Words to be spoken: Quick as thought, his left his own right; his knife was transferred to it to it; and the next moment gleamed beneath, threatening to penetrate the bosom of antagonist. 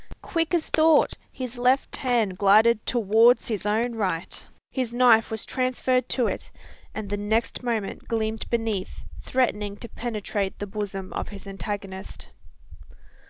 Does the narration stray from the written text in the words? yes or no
yes